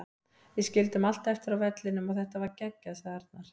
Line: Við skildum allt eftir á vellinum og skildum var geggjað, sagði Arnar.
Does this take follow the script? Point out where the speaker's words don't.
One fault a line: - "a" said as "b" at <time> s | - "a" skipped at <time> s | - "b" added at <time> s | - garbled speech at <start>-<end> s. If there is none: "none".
- "skildum" said as "þetta" at 2.2 s